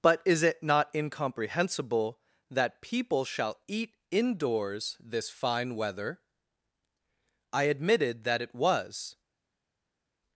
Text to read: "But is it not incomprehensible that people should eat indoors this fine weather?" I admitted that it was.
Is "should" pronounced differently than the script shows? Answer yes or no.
yes